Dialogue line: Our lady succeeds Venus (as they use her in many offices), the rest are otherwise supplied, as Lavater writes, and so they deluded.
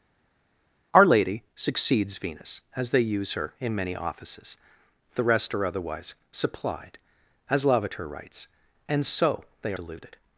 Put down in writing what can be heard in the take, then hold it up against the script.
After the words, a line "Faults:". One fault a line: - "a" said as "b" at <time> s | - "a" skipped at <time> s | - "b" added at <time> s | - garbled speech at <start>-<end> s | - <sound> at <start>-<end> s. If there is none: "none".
Our lady succeeds Venus (as they use her in many offices), the rest are otherwise supplied, as Lavater writes, and so they deluded.
Faults:
none